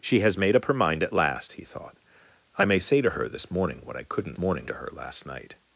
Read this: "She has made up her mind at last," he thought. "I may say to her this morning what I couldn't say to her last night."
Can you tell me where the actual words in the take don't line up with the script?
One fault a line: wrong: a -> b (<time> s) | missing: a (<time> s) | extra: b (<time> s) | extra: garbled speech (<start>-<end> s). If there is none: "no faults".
wrong: say -> morning (4.4 s)